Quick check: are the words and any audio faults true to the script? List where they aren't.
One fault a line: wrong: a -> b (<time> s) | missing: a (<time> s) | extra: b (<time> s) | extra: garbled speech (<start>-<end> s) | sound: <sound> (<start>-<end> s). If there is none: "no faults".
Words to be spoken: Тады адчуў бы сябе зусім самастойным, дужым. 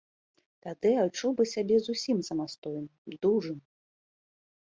no faults